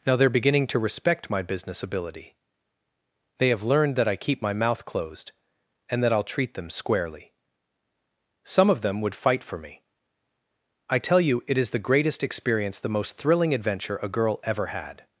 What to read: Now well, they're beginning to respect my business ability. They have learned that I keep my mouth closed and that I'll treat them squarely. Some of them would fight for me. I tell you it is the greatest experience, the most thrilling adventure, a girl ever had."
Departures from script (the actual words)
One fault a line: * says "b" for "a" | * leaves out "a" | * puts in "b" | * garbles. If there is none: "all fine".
* leaves out "well"